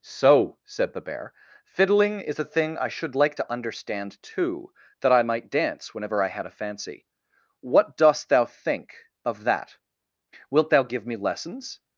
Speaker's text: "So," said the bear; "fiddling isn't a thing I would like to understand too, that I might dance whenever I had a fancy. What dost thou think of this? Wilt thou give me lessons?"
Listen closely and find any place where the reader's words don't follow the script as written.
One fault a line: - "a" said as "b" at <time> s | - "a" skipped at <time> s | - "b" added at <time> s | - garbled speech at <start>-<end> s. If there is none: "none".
- "isn't" said as "is" at 2.2 s
- "would" said as "should" at 2.9 s
- "this" said as "that" at 9.4 s